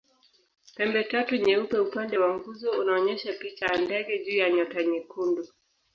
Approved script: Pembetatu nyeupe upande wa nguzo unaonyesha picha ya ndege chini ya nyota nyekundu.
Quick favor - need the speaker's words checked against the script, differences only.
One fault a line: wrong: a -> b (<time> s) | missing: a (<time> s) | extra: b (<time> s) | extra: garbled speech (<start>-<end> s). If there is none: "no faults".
wrong: chini -> juu (4.2 s)